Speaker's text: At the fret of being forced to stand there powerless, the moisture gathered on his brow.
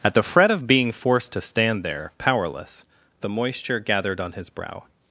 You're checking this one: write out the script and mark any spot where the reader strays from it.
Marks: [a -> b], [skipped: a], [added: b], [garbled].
At the fret of being forced to stand there powerless, the moisture gathered on his brow.